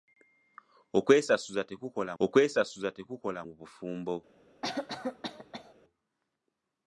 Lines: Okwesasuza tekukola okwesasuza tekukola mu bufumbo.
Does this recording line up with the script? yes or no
yes